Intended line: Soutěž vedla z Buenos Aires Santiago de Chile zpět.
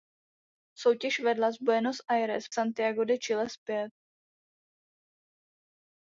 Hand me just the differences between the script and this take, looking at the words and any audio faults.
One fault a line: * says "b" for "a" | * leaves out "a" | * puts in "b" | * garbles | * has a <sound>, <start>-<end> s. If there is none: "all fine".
all fine